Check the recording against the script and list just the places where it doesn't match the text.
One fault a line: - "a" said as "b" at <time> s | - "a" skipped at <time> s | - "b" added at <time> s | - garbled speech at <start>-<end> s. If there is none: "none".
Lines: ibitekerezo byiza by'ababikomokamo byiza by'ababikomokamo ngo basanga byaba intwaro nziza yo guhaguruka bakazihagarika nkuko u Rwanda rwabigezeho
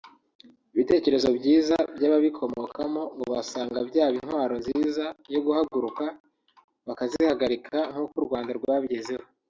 - "byiza by'ababikomokamo" skipped at 3.0 s